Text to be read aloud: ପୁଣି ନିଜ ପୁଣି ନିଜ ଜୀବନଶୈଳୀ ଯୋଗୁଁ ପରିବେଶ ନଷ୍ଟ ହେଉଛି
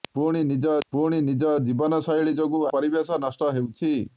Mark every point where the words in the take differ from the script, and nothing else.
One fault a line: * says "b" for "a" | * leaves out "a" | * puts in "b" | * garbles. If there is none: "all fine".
all fine